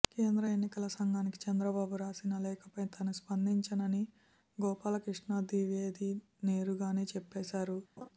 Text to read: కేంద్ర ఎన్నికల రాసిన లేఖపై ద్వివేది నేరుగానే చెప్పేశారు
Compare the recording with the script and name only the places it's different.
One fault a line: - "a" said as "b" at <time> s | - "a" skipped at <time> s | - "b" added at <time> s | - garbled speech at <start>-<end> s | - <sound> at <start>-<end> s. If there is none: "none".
- "సంఘానికి చంద్రబాబు" added at 0.9 s
- "తాను స్పందించనని గోపాలకృష్ణ" added at 2.9 s
- laugh at 8.0-8.1 s